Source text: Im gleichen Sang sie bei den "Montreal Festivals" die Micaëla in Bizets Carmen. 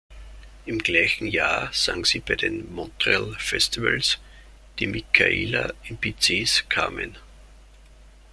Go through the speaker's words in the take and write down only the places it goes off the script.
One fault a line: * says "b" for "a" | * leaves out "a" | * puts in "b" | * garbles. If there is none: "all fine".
* puts in "Jahr"